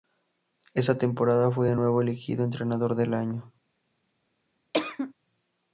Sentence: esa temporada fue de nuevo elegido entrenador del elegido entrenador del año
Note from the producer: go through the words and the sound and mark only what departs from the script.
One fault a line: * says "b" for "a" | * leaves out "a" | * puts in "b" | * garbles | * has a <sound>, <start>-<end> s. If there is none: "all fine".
* leaves out "elegido entrenador del"
* has a cough, 4.7-5.1 s